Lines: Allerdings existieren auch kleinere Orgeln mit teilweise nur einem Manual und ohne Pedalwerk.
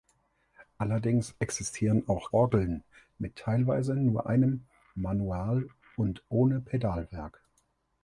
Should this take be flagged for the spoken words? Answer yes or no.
yes